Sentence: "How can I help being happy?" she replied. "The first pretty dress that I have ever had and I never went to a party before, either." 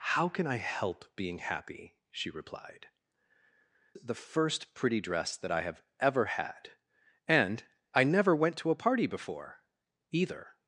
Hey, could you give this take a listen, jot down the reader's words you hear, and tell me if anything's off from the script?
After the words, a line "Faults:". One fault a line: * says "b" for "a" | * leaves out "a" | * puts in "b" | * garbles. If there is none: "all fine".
"How can I help being happy?" she replied. "The first pretty dress that I have ever had and I never went to a party before, either."
Faults:
all fine